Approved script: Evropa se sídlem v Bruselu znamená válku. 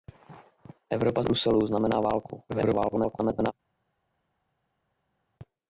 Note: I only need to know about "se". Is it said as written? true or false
false